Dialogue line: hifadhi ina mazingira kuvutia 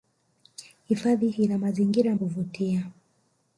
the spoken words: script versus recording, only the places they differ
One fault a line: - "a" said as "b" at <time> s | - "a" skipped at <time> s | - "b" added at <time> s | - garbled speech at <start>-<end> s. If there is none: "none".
none